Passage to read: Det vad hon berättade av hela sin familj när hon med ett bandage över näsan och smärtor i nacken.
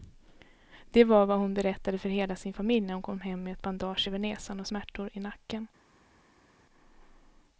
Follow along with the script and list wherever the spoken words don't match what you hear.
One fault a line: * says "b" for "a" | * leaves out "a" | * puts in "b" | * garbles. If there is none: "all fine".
* puts in "var"
* says "för" for "av"
* puts in "kom hem"